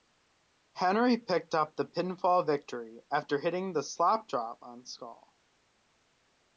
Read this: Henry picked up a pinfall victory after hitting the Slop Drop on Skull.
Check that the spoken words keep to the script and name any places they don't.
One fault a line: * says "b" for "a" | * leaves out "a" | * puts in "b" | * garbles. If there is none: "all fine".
* says "the" for "a"